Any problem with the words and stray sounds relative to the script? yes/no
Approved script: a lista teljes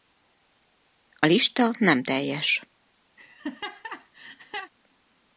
yes